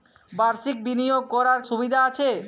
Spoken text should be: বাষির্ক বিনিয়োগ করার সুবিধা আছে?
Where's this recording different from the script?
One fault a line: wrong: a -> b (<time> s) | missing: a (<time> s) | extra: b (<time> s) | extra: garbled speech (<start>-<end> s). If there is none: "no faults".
no faults